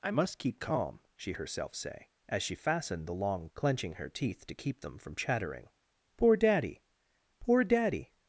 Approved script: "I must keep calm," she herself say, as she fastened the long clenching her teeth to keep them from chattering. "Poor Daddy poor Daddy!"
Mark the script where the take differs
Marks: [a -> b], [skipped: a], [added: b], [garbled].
"I must keep calm," she herself say, as she fastened the long clenching her teeth to keep them from chattering. "Poor Daddy poor Daddy!"